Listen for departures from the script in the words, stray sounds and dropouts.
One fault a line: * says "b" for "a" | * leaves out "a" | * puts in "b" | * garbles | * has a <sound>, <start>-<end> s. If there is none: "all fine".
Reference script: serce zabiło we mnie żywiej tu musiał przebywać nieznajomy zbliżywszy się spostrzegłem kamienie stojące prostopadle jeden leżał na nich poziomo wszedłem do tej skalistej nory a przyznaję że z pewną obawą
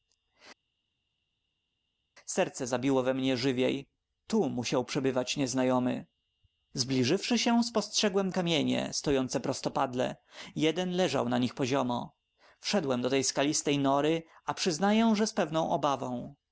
all fine